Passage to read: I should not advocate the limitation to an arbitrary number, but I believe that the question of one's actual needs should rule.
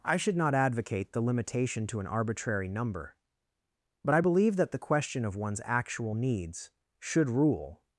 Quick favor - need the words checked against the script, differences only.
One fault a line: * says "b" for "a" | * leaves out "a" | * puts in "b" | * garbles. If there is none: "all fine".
all fine